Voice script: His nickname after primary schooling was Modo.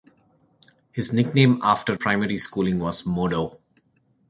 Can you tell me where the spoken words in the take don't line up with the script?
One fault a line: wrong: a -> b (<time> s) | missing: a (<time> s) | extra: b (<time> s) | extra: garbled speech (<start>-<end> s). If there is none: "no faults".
no faults